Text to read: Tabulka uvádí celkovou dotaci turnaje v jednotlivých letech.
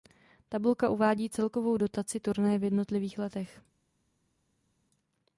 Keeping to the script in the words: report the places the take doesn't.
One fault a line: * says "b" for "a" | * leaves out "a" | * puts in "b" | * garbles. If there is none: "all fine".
all fine